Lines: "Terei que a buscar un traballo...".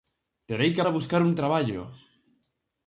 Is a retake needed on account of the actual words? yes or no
no